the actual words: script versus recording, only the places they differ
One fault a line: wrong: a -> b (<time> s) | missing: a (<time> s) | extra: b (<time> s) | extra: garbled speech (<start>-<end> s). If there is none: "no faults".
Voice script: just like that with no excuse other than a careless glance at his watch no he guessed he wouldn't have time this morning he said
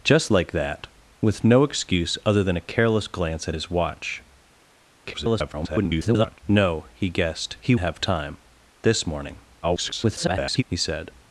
extra: garbled speech (5.0-6.4 s)
missing: wouldn't (7.7 s)
extra: garbled speech (9.6-10.6 s)